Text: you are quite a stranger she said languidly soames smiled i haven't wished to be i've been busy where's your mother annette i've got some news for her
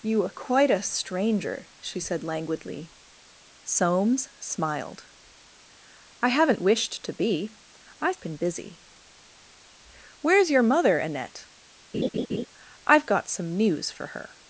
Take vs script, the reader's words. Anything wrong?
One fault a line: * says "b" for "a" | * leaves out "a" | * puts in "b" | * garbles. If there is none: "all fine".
all fine